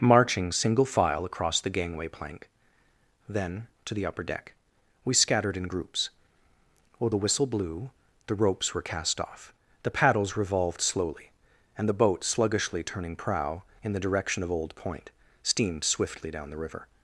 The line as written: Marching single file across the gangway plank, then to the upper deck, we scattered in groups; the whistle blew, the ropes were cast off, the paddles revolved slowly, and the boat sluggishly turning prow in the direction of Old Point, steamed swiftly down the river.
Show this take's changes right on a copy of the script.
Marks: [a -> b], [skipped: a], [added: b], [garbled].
Marching single file across the gangway plank, then to the upper deck, we scattered in groups; [added: while] the whistle blew, the ropes were cast off, the paddles revolved slowly, and the boat sluggishly turning prow in the direction of Old Point, steamed swiftly down the river.